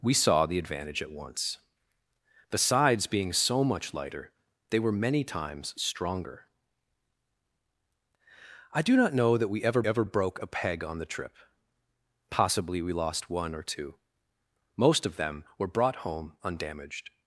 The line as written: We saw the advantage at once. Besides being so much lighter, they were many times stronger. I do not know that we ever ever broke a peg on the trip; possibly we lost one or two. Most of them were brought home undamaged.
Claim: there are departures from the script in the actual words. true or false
false